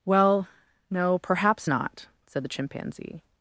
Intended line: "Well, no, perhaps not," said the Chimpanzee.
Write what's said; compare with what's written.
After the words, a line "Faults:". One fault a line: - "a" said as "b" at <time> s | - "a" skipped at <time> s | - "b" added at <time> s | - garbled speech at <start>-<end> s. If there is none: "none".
"Well, no, perhaps not," said the Chimpanzee.
Faults:
none